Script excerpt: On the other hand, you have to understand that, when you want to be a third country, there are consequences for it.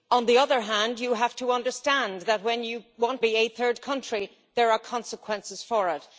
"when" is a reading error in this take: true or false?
false